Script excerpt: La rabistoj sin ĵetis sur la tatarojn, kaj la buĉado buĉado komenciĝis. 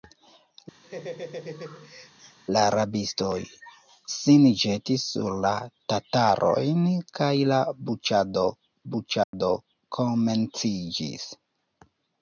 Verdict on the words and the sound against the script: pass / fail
fail